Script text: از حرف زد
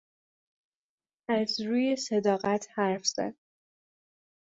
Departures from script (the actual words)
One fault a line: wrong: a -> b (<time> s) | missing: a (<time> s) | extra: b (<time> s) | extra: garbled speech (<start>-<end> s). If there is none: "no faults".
extra: روی صداقت (1.6 s)